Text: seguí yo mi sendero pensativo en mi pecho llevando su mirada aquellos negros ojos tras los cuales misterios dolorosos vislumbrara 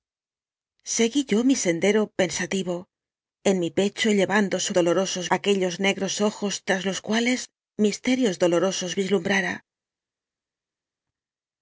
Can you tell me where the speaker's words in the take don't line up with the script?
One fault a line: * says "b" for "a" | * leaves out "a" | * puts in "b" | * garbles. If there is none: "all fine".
* says "dolorosos" for "mirada"